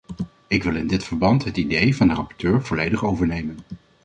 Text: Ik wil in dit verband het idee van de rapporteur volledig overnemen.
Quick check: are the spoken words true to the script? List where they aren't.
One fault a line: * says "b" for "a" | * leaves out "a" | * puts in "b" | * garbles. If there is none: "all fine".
all fine